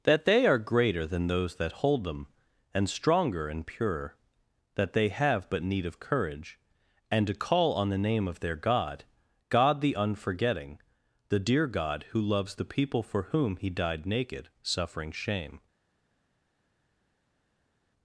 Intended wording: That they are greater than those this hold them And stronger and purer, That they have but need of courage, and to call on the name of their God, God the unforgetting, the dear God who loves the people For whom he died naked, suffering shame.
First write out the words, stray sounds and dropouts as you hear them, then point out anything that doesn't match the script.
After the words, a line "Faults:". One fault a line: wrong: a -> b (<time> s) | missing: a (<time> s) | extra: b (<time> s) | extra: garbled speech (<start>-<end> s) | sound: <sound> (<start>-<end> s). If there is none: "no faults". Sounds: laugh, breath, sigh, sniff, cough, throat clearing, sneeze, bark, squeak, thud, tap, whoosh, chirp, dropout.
That they are greater than those that hold them And stronger and purer, That they have but need of courage, and to call on the name of their God, God the unforgetting, the dear God who loves the people For whom he died naked, suffering shame.
Faults:
wrong: this -> that (1.6 s)